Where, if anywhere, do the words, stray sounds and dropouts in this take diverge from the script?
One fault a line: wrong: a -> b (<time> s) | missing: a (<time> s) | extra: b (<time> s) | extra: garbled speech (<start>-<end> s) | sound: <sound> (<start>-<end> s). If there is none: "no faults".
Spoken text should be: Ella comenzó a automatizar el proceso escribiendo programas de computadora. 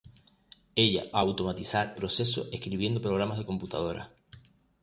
missing: comenzó (1.1 s)
missing: el (1.9 s)